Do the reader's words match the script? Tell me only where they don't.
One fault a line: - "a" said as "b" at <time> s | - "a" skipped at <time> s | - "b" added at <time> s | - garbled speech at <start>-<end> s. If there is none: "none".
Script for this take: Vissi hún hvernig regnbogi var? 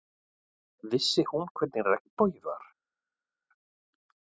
none